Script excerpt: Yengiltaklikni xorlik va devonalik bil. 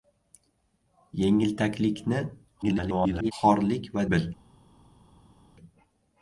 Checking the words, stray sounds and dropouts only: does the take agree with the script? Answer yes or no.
no